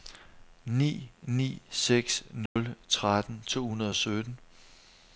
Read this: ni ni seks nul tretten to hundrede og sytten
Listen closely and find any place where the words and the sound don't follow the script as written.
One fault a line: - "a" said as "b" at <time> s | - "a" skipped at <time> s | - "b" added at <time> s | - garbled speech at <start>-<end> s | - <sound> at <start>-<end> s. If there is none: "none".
- dropout at 2.5-2.6 s